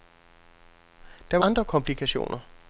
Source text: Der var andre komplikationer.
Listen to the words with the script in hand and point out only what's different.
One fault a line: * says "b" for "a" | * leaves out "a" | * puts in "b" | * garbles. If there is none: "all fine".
all fine